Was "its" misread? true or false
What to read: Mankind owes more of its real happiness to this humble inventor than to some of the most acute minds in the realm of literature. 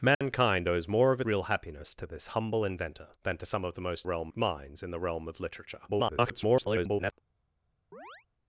true